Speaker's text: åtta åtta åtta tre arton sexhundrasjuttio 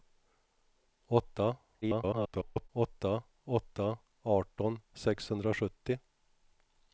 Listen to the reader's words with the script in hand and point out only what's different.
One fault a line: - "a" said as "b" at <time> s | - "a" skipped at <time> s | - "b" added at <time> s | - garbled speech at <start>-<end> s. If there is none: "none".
- garbled speech at 1.8-2.7 s
- "tre" skipped at 4.0 s